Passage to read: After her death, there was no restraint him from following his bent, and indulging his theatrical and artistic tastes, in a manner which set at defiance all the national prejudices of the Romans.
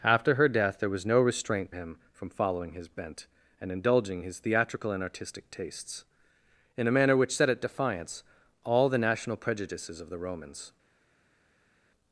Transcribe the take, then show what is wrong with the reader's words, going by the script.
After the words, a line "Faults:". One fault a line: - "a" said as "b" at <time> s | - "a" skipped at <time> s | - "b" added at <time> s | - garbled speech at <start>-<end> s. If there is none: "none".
After her death, there was no restraint him from following his bent, and indulging his theatrical and artistic tastes, in a manner which set at defiance all the national prejudices of the Romans.
Faults:
none